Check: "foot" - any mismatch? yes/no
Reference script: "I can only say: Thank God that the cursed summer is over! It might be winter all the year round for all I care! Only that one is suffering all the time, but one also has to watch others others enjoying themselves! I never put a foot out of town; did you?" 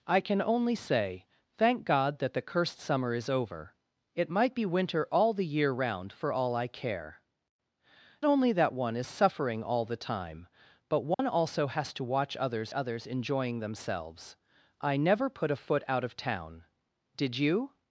no